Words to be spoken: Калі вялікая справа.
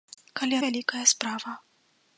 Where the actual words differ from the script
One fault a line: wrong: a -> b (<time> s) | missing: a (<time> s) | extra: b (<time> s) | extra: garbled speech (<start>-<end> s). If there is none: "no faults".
no faults